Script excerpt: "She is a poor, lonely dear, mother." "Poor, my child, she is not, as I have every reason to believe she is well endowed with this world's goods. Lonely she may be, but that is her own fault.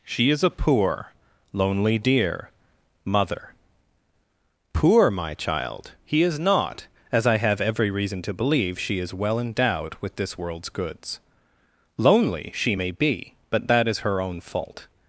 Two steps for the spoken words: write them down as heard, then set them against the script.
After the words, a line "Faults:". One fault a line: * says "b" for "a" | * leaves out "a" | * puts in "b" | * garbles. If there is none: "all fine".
"She is a poor, lonely dear, mother." "Poor, my child, he is not, as I have every reason to believe she is well endowed with this world's goods. Lonely she may be, but that is her own fault.
Faults:
* says "he" for "she"